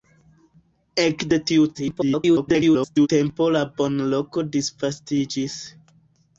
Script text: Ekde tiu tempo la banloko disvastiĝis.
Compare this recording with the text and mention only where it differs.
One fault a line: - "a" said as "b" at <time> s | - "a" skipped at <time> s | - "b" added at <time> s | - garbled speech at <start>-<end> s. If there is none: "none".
- garbled speech at 1.7-3.1 s